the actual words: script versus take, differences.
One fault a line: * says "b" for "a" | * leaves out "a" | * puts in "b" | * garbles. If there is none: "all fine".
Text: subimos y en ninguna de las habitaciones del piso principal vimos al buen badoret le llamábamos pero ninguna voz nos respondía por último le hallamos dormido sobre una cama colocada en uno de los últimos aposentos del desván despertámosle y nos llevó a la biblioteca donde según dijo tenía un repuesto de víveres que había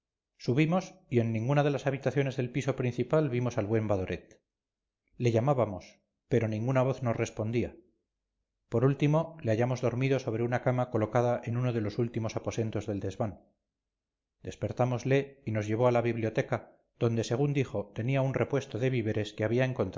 all fine